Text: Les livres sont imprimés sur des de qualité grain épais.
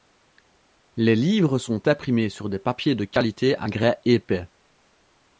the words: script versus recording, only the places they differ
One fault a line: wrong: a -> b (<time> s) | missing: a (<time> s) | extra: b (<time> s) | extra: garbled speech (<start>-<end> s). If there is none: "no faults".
extra: papiers (2.6 s)
extra: à (3.6 s)